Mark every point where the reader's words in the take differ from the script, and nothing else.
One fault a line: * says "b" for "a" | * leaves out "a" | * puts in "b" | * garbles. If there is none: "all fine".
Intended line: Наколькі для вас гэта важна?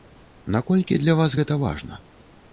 all fine